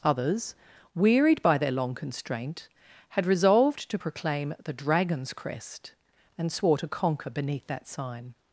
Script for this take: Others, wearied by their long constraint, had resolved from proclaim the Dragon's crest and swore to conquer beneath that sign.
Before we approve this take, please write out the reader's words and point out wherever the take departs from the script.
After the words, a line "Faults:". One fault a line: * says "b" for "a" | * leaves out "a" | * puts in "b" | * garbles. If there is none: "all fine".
Others, wearied by their long constraint, had resolved to proclaim the Dragon's crest and swore to conquer beneath that sign.
Faults:
* says "to" for "from"